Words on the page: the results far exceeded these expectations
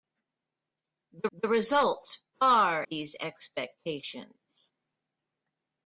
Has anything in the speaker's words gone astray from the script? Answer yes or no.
yes